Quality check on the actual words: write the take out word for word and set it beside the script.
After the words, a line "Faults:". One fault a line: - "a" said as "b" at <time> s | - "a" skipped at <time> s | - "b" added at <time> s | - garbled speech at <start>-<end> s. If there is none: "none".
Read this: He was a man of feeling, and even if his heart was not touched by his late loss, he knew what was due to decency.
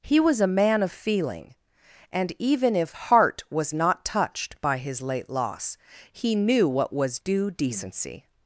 He was a man of feeling, and even if heart was not touched by his late loss, he knew what was due decency.
Faults:
- "his" skipped at 2.9 s
- "to" skipped at 7.5 s